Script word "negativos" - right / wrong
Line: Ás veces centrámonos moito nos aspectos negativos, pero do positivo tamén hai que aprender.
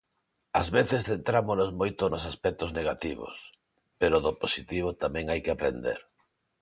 right